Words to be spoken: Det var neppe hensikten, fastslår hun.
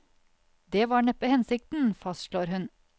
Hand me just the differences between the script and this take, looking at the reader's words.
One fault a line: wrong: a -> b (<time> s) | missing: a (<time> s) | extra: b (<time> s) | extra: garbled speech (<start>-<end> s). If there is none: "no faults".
no faults